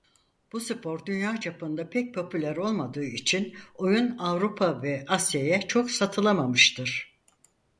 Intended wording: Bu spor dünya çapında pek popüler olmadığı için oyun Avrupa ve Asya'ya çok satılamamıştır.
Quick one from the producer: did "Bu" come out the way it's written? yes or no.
yes